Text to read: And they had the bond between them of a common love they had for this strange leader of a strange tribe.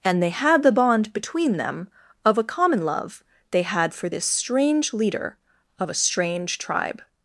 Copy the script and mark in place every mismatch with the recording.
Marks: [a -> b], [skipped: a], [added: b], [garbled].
And they had the bond between them of a common love they had for this strange leader of a strange tribe.